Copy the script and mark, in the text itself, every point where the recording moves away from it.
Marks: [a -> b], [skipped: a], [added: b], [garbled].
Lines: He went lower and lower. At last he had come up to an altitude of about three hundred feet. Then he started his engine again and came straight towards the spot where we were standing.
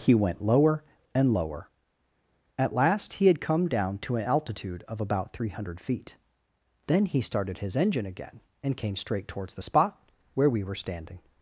He went lower and lower. At last he had come [up -> down] to an altitude of about three hundred feet. Then he started his engine again and came straight towards the spot where we were standing.